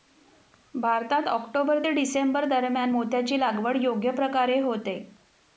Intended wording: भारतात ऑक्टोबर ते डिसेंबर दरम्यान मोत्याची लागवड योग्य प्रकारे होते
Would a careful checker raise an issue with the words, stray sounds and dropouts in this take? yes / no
no